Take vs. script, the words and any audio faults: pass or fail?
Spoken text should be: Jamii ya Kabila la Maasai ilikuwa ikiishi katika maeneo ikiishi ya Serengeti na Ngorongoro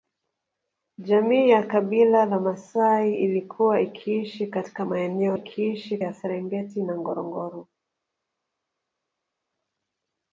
pass